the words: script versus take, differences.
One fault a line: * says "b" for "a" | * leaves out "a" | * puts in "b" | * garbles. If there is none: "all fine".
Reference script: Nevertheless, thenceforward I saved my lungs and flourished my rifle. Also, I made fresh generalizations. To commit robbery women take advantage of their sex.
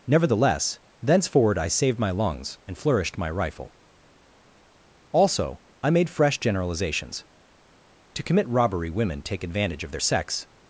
all fine